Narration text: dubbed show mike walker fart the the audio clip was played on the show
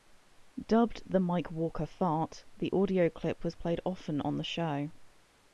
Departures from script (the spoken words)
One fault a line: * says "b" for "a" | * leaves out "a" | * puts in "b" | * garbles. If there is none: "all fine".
* says "the" for "show"
* leaves out "the"
* puts in "often"